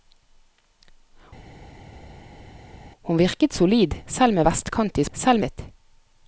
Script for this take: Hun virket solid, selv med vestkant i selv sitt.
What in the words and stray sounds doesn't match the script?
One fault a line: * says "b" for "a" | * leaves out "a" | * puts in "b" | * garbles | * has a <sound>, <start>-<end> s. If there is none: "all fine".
all fine